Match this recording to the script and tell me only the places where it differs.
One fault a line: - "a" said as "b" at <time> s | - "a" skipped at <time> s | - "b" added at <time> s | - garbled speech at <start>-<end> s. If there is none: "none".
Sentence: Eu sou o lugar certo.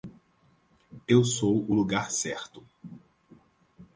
none